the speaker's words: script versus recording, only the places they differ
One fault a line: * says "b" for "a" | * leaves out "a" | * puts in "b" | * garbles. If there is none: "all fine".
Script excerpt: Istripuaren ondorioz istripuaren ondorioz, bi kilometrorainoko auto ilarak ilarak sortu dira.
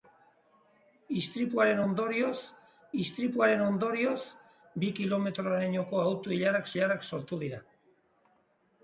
all fine